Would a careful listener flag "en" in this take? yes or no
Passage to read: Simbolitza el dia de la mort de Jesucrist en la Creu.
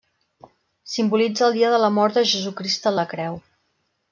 no